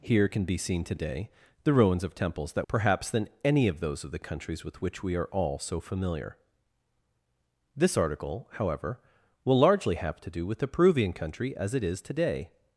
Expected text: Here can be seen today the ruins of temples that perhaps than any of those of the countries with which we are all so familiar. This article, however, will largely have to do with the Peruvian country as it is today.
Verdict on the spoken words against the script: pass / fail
pass